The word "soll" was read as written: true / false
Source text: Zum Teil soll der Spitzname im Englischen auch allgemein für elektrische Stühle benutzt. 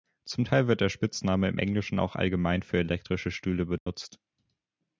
false